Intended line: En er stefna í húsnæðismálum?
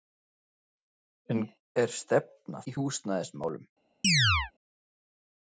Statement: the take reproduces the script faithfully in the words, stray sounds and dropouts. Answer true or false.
false